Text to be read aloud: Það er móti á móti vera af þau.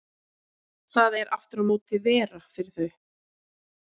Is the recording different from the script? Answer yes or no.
yes